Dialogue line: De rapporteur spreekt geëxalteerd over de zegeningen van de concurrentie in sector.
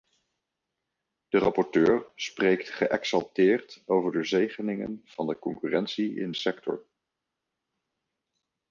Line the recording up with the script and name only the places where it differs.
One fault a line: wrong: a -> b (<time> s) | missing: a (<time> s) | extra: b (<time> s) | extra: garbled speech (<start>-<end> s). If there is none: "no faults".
no faults